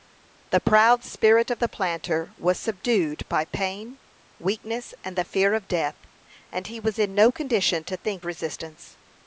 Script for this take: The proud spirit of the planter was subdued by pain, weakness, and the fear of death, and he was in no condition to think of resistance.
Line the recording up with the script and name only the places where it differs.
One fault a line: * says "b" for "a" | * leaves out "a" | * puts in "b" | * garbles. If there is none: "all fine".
* leaves out "of"